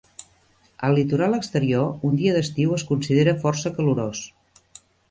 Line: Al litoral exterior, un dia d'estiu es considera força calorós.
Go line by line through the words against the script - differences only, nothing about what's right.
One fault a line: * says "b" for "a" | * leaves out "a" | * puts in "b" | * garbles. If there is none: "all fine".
all fine